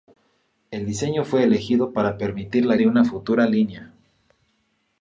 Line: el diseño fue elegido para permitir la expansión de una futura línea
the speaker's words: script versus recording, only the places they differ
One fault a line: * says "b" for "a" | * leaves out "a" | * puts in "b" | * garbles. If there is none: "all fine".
* leaves out "expansión"